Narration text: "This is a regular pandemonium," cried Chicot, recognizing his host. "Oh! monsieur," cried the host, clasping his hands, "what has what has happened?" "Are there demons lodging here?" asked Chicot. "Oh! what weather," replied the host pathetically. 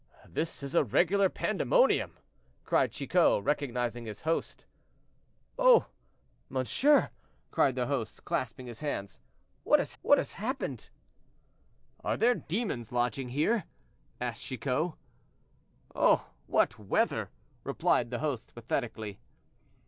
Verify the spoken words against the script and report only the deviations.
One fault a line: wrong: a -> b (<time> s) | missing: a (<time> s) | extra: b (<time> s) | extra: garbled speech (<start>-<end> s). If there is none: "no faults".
no faults